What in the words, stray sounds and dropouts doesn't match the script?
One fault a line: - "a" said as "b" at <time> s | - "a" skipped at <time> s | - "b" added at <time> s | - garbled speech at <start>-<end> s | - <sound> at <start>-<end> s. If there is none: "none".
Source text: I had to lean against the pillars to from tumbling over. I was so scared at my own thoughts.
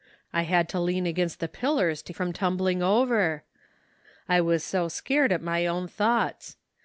none